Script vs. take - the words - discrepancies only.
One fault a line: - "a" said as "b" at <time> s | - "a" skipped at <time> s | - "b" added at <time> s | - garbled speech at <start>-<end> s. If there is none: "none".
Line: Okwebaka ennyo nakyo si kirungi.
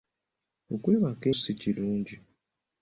- "ennyo nakyo" skipped at 1.2 s